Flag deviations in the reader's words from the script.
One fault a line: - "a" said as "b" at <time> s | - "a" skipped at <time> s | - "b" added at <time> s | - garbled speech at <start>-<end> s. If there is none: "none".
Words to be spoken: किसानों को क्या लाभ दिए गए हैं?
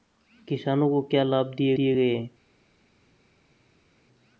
- "दिए" added at 1.8 s